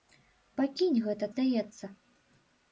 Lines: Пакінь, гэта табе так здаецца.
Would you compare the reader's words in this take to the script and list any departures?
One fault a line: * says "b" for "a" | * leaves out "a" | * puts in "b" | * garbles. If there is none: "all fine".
* leaves out "табе так"